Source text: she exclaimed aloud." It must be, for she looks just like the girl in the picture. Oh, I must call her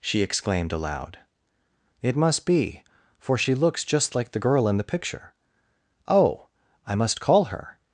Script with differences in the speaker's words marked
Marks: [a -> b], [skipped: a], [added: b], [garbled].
she exclaimed aloud." It must be, for she looks just like the girl in the picture. Oh, I must call her